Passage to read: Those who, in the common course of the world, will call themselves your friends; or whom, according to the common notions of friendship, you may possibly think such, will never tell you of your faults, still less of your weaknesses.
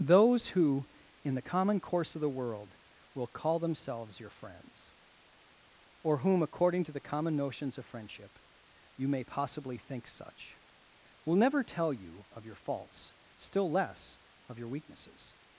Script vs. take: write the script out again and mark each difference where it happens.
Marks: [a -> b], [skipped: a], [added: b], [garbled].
Those who, in the common course of the world, will call themselves your friends; or whom, according to the common notions of friendship, you may possibly think such, will never tell you of your faults, still less of your weaknesses.